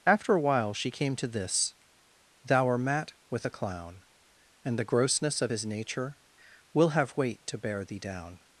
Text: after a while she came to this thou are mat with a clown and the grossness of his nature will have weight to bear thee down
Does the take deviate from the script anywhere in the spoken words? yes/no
no